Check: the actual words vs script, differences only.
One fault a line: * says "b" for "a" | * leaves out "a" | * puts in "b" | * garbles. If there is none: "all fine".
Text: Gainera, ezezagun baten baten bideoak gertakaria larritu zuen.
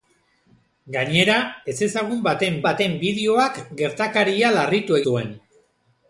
all fine